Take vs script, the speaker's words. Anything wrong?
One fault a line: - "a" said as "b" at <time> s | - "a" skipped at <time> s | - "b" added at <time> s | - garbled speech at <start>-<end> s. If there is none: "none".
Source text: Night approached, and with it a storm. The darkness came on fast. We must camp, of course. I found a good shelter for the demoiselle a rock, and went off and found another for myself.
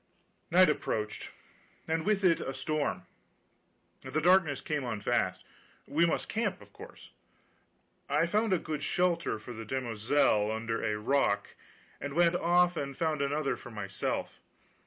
- "under" added at 10.5 s